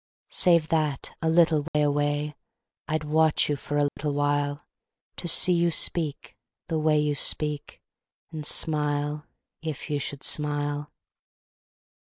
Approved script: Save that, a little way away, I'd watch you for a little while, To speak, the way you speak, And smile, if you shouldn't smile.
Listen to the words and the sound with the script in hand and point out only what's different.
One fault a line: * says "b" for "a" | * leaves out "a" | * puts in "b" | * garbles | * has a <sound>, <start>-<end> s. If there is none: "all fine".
* has a dropout, 1.7-1.7 s
* has a dropout, 3.9-4.0 s
* puts in "see you"
* says "should" for "shouldn't"